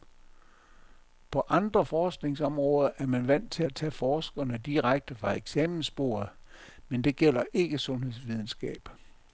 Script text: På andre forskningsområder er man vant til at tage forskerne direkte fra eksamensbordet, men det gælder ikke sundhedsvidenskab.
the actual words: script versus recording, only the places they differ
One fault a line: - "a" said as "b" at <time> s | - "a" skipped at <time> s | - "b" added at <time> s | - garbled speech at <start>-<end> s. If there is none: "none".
none